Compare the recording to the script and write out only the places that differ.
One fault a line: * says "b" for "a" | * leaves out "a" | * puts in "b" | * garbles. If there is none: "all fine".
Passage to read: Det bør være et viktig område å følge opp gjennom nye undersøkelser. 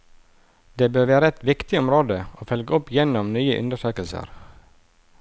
all fine